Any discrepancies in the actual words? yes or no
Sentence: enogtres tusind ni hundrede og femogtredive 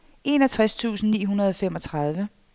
no